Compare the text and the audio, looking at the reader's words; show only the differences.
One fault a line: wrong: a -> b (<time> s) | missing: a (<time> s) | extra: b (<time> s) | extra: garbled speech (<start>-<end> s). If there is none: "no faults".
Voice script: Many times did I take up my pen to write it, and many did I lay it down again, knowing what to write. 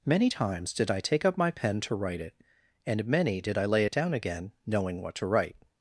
no faults